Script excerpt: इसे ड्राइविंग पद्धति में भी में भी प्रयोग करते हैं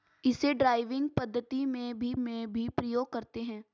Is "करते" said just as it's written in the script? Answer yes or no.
yes